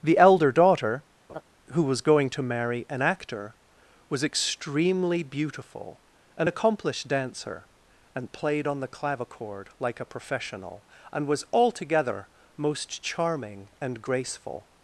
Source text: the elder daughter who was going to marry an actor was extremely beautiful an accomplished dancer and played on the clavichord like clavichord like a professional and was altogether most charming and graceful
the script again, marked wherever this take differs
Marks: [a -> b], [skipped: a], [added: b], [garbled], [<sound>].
the elder daughter [laugh] who was going to marry an actor was extremely beautiful an accomplished dancer and played on the clavichord like [skipped: clavichord like] a professional and was altogether most charming and graceful